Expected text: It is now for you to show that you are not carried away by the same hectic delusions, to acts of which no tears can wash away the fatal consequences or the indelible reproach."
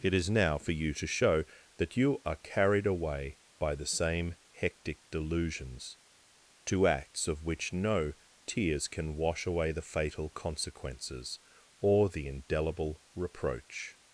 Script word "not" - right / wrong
wrong